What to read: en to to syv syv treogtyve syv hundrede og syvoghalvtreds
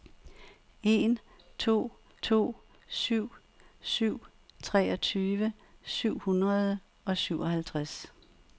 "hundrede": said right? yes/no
yes